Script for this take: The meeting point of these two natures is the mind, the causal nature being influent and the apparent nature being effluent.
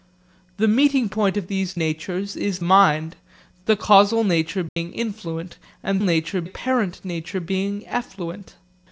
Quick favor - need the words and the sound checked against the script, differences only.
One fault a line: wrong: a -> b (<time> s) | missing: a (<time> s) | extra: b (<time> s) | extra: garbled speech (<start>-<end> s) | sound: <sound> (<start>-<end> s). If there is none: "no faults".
missing: two (1.8 s)
missing: the (2.6 s)
sound: dropout (4.7-4.8 s)
wrong: the -> nature (6.0 s)